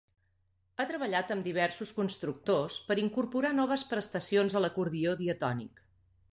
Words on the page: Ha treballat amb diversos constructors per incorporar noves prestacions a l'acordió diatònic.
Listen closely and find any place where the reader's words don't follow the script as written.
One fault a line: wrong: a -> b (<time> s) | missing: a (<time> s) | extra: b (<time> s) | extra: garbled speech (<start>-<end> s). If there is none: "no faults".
no faults